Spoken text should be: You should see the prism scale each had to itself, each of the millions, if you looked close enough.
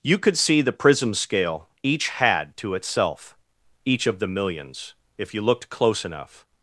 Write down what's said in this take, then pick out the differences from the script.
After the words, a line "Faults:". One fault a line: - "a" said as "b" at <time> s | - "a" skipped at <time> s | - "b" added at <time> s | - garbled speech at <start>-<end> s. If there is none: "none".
You could see the prism scale each had to itself, each of the millions, if you looked close enough.
Faults:
- "should" said as "could" at 0.2 s